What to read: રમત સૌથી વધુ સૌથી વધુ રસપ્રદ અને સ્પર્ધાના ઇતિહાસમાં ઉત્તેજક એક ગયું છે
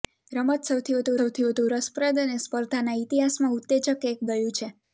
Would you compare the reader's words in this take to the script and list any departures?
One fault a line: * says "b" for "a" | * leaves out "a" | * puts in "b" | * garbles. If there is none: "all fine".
all fine